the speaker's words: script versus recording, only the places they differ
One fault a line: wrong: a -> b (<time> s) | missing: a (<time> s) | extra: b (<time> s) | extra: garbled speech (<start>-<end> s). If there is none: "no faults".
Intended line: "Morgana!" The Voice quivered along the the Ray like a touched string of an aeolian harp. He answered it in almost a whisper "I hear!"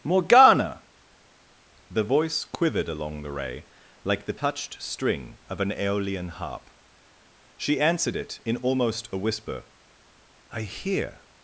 missing: the (3.3 s)
wrong: a -> the (4.2 s)
wrong: He -> She (7.6 s)